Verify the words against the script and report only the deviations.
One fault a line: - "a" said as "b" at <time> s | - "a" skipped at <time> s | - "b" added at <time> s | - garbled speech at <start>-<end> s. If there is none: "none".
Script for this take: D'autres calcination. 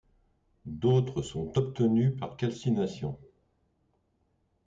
- "sont obtenus par" added at 1.2 s